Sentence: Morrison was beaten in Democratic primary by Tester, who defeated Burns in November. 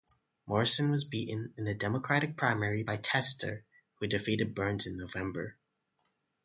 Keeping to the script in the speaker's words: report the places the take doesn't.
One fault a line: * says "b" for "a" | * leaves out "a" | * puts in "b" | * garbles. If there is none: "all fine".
* puts in "the"